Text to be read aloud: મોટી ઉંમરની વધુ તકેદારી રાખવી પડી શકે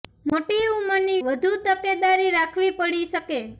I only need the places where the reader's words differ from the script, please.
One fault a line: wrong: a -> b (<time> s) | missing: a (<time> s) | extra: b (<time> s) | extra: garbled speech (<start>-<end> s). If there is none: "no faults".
no faults